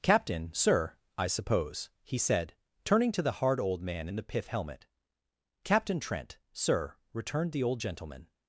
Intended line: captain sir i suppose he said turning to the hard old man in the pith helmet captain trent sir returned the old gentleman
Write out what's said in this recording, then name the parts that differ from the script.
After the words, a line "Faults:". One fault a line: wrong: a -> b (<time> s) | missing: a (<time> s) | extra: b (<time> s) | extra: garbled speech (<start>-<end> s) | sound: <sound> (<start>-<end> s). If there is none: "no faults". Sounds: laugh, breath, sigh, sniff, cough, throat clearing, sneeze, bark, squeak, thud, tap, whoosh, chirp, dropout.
captain sir i suppose he said turning to the hard old man in the pith helmet captain trent sir returned the old gentleman
Faults:
no faults